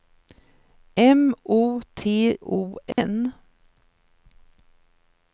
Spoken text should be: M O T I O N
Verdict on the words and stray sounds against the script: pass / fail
fail